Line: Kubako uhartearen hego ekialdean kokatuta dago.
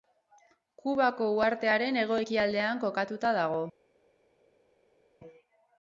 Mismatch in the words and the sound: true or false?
false